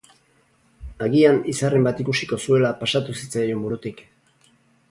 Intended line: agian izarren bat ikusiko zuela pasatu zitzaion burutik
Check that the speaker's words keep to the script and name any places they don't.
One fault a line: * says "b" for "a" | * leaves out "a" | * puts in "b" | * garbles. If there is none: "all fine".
all fine